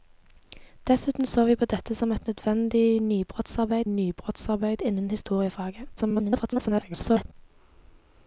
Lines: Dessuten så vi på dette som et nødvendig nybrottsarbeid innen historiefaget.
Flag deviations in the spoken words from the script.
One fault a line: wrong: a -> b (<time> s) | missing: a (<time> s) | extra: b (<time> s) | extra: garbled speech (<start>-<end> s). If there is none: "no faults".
extra: nybrottsarbeid (3.9 s)
extra: garbled speech (6.0-7.3 s)